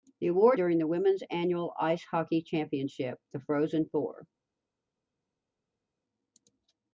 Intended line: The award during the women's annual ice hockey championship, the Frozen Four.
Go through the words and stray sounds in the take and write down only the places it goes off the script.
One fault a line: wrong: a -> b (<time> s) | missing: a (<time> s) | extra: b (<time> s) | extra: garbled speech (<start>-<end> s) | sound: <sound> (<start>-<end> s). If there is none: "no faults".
no faults